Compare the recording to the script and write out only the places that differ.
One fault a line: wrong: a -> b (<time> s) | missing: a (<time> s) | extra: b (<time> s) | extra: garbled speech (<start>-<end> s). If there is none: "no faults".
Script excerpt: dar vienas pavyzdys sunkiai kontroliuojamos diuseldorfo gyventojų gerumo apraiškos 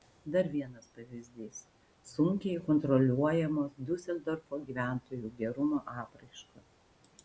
no faults